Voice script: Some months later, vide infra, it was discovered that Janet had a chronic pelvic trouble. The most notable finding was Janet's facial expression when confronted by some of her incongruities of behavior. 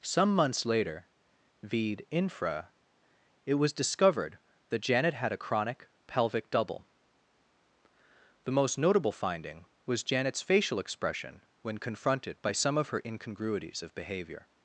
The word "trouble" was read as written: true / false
false